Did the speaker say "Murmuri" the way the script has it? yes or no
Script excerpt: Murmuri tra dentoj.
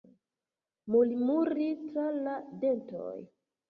yes